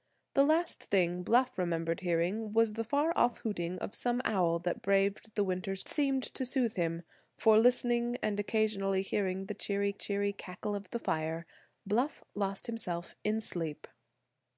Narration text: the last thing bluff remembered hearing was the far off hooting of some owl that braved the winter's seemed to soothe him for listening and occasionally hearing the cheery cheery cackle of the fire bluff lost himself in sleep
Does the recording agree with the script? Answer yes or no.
yes